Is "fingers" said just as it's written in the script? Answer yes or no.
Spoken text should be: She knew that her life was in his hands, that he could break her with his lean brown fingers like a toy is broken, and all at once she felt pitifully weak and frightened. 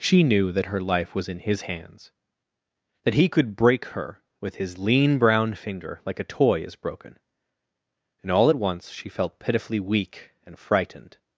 no